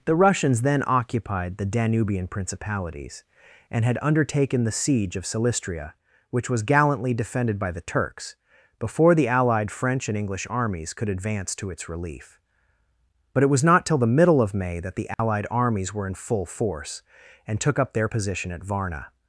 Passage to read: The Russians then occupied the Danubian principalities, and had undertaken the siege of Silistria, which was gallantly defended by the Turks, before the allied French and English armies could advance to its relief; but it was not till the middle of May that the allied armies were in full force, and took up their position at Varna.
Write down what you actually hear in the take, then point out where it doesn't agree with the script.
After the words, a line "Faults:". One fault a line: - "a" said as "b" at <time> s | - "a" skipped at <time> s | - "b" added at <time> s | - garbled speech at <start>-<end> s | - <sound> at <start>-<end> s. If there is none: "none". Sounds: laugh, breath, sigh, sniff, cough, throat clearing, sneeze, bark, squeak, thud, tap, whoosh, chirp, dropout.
The Russians then occupied the Danubian principalities, and had undertaken the siege of Silistria, which was gallantly defended by the Turks, before the allied French and English armies could advance to its relief; but it was not till the middle of May that the allied armies were in full force, and took up their position at Varna.
Faults:
- dropout at 15.1-15.2 s